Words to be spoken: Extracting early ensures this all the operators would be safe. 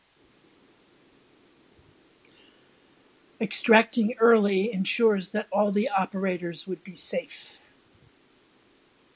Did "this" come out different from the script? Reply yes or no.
yes